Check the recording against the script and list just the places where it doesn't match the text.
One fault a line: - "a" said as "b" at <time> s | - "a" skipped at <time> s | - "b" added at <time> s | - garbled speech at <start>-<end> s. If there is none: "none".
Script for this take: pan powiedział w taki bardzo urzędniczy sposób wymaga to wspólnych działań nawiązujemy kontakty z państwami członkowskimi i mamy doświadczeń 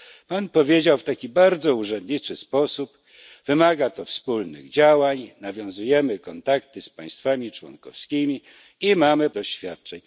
none